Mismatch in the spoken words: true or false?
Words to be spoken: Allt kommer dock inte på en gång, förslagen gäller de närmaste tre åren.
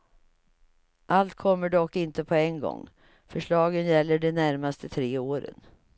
false